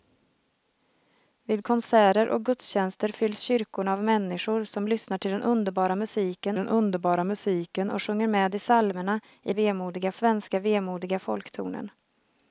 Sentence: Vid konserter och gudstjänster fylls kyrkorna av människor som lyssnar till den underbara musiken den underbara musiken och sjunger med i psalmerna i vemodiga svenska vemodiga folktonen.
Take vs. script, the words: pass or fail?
pass